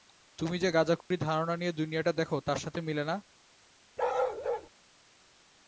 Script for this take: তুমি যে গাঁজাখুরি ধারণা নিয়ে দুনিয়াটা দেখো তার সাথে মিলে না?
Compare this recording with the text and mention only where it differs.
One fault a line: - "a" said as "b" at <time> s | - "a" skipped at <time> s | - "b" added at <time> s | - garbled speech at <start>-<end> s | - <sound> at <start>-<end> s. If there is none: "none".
- dropout at 1.0-1.1 s
- bark at 4.0-4.7 s